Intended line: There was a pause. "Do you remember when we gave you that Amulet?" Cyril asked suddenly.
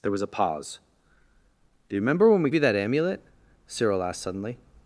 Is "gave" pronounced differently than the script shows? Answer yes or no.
yes